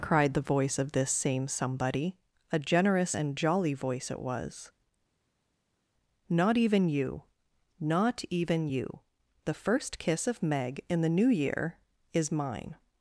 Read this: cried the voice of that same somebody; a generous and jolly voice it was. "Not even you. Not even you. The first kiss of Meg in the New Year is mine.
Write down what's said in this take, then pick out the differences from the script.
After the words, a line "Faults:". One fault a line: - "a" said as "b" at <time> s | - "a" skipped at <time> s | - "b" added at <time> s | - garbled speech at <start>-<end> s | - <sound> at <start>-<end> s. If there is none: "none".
cried the voice of this same somebody; a generous and jolly voice it was. "Not even you. Not even you. The first kiss of Meg in the New Year is mine.
Faults:
- "that" said as "this" at 0.9 s